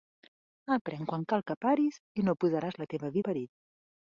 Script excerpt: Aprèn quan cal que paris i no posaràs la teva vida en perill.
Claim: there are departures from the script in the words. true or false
true